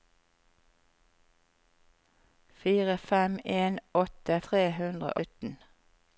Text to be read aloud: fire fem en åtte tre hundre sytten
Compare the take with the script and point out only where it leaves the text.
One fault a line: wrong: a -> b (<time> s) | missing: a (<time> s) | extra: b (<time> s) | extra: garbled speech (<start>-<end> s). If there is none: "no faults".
no faults